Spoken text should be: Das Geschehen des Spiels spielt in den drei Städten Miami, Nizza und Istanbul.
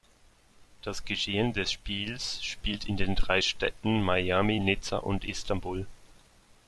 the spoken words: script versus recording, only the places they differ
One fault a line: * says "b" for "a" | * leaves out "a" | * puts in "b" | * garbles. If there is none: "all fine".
all fine